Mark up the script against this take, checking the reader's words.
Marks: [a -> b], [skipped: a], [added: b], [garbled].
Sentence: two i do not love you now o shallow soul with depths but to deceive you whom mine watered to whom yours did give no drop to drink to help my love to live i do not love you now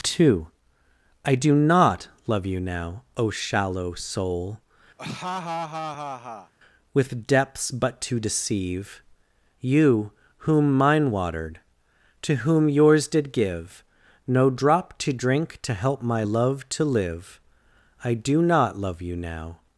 two i do not love you now o shallow soul with depths but to deceive you whom mine watered to whom yours did give no drop to drink to help my love to live i do not love you now